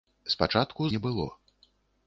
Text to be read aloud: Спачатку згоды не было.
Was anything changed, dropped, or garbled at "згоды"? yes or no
yes